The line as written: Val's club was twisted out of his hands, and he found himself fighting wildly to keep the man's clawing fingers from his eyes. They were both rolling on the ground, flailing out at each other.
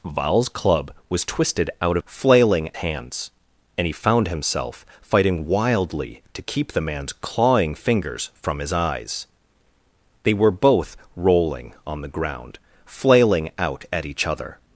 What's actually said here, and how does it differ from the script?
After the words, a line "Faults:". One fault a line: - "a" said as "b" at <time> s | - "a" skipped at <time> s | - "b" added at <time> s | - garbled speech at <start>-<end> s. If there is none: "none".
Val's club was twisted out of flailing hands, and he found himself fighting wildly to keep the man's clawing fingers from his eyes. They were both rolling on the ground, flailing out at each other.
Faults:
- "his" said as "flailing" at 2.0 s